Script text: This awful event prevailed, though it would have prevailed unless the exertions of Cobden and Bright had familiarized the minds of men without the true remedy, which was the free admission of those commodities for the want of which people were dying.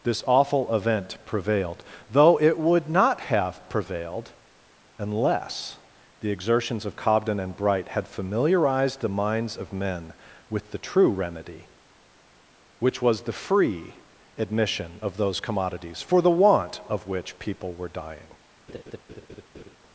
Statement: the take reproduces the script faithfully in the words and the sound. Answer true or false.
false